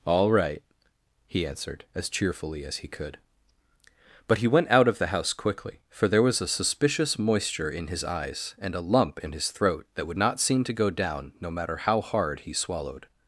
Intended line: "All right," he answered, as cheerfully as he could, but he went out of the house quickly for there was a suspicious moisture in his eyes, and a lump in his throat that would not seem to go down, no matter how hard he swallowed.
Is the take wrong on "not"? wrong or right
right